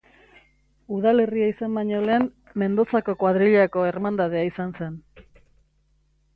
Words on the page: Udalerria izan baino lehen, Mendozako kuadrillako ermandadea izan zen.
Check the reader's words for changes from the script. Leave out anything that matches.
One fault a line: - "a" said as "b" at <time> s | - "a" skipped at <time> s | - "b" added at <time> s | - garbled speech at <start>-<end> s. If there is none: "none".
none